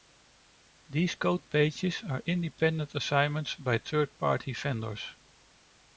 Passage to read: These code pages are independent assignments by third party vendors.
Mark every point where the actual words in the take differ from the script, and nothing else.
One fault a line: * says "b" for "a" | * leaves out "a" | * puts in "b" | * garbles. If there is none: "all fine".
all fine